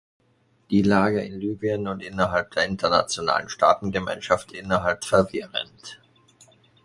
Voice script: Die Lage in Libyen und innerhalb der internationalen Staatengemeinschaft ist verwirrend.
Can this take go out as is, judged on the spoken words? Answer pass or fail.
fail